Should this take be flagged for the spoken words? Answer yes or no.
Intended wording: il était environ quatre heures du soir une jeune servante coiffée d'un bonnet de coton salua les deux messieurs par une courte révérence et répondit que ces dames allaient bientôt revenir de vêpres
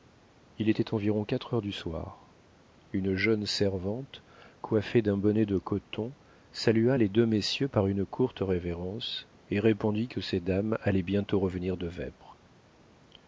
no